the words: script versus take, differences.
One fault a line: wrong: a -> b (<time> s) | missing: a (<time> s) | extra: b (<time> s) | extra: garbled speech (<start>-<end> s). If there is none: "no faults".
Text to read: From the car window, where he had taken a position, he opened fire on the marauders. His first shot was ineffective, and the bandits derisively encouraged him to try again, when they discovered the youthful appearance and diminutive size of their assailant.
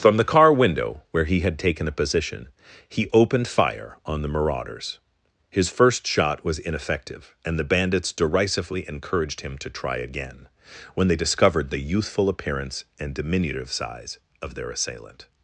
no faults